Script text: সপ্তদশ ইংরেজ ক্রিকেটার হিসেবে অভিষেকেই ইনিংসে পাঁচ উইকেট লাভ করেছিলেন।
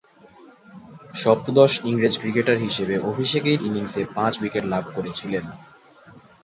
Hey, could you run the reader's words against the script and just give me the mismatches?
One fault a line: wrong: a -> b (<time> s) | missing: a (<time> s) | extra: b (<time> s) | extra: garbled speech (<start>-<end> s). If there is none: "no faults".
no faults